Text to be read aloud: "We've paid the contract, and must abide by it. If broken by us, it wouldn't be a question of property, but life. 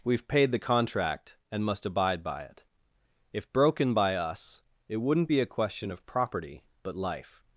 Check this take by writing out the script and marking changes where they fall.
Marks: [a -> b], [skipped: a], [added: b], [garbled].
"We've paid the contract, and must abide by it. If broken by us, it wouldn't be a question of property, but life.